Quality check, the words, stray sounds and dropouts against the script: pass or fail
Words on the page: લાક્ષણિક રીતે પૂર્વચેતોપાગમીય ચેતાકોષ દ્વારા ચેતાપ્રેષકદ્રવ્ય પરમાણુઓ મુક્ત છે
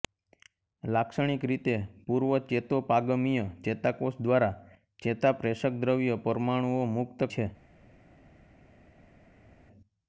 pass